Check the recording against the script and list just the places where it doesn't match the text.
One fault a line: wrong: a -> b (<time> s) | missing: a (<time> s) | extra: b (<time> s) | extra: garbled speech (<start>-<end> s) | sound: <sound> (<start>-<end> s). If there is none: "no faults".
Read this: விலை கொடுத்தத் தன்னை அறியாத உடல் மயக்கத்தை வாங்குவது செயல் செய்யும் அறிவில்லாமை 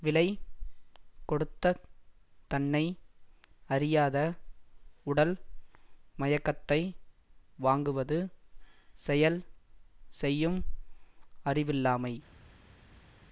no faults